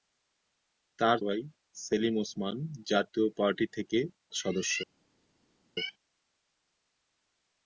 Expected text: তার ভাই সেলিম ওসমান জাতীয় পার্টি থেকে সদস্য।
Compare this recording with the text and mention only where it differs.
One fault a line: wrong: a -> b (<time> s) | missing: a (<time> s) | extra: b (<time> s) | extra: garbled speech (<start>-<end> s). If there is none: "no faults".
no faults